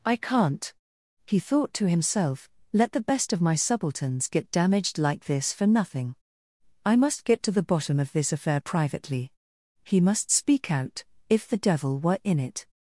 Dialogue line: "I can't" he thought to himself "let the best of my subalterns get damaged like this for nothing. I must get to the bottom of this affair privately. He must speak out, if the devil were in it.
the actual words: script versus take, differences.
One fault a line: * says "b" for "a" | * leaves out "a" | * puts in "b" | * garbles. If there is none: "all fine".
all fine